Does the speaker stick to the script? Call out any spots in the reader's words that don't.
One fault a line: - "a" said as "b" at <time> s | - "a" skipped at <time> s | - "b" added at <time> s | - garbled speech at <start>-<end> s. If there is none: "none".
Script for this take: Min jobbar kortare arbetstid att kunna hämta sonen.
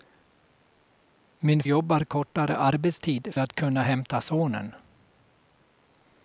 none